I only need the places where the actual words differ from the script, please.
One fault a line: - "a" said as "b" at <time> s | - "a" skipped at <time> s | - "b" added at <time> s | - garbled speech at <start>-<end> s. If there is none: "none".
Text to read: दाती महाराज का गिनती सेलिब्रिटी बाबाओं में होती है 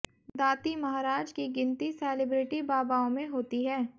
- "का" said as "की" at 1.3 s